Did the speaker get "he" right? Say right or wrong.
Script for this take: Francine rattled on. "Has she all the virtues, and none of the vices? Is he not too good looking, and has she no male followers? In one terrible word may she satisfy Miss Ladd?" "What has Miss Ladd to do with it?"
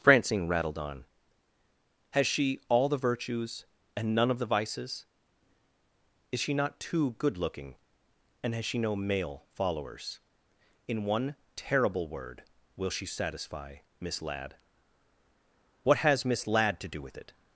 wrong